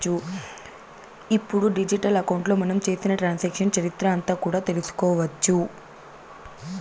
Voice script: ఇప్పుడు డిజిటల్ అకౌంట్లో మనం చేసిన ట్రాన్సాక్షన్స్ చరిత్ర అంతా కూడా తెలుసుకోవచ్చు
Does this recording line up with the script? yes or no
yes